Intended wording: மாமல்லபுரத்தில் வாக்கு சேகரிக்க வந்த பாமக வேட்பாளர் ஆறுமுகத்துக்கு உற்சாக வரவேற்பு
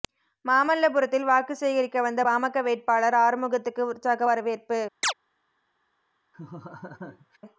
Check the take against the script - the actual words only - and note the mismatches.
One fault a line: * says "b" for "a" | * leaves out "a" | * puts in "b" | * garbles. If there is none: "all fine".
all fine